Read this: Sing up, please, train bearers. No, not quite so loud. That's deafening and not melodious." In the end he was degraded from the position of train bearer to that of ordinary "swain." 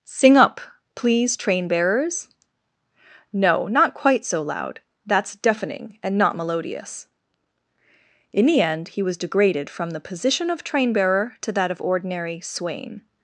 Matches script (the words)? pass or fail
pass